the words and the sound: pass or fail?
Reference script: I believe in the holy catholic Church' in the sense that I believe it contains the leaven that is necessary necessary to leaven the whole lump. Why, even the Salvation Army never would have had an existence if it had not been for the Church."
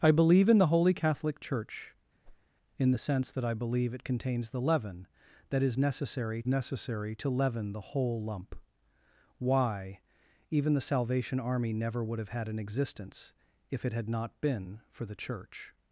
fail